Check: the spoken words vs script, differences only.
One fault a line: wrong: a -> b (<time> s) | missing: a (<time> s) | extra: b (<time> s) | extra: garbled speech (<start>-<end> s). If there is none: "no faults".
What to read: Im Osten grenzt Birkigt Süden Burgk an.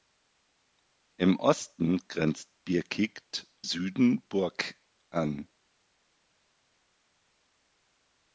no faults